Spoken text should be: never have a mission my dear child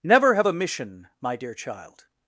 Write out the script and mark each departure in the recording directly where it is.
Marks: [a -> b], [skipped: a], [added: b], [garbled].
never have a mission my dear child